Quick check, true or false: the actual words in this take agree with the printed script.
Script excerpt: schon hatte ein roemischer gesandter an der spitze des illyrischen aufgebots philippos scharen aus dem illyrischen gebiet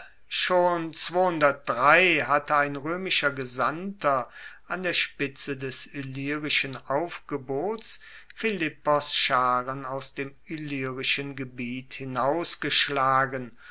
true